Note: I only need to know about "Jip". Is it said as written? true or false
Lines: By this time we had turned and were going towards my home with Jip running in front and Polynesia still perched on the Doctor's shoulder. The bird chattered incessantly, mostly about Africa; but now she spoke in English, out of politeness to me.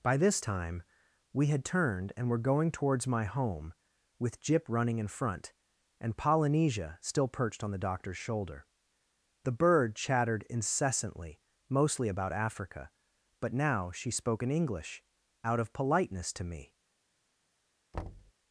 true